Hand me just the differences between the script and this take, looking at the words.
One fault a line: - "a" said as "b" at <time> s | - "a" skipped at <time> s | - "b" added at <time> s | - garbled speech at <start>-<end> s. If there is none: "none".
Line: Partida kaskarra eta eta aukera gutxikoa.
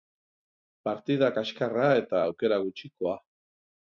- "eta" skipped at 2.2 s